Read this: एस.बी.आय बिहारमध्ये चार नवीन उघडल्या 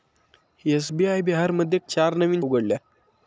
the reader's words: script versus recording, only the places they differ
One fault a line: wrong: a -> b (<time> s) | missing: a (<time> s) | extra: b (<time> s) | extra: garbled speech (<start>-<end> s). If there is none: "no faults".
no faults